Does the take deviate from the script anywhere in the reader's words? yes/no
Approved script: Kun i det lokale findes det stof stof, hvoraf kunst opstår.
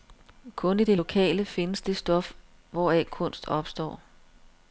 yes